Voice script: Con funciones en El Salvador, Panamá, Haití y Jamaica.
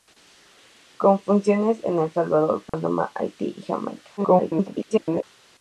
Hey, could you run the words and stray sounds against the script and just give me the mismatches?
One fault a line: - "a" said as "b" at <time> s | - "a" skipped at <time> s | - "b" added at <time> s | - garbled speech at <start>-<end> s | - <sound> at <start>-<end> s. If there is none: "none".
- dropout at 2.7-2.7 s
- garbled speech at 4.2-5.2 s